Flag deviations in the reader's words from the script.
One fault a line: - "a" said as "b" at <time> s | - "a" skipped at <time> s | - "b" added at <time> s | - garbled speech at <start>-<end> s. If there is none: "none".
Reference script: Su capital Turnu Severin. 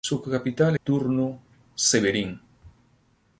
none